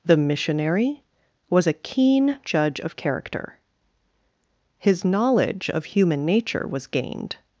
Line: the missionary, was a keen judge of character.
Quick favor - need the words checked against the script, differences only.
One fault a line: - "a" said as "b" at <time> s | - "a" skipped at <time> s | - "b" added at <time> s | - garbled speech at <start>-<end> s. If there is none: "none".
- "His knowledge of human nature was gained" added at 4.8 s